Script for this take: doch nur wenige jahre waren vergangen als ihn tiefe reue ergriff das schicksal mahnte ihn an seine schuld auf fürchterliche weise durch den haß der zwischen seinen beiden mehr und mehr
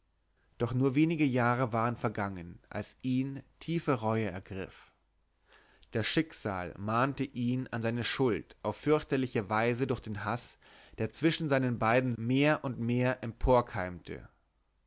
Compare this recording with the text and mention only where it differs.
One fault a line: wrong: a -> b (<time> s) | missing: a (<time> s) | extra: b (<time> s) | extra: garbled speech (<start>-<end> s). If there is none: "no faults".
no faults